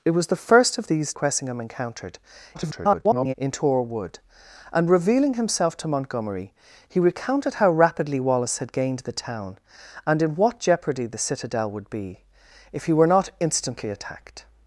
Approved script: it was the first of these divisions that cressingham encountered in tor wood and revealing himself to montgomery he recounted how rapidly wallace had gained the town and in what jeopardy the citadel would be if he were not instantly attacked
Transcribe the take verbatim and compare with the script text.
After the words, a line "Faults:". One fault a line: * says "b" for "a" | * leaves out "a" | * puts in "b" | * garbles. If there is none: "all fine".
it was the first of these cressingham encountered [garbled] in tor wood and revealing himself to montgomery he recounted how rapidly wallace had gained the town and in what jeopardy the citadel would be if he were not instantly attacked
Faults:
* leaves out "divisions that"
* garbles